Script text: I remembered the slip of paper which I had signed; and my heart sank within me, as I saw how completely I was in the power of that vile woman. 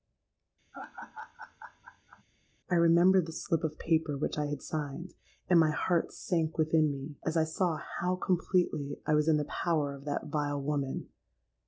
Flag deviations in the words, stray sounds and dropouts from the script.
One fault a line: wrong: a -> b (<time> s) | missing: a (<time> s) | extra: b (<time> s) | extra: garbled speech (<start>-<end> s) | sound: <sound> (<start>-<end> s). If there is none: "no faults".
sound: laugh (0.7-2.2 s)